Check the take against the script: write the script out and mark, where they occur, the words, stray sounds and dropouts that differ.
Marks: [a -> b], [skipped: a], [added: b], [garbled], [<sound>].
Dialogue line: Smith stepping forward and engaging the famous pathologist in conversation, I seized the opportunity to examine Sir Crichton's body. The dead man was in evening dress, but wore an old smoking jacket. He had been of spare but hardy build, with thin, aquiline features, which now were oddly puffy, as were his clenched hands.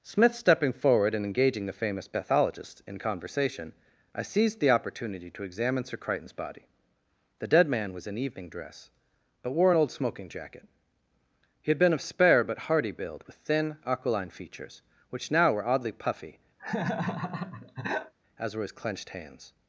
Smith stepping forward and engaging the famous pathologist in conversation, I seized the opportunity to examine Sir Crichton's body. The dead man was in evening dress, but wore an old smoking jacket. He had been of spare but hardy build, with thin, aquiline features, which now were oddly puffy, [laugh] as were his clenched hands.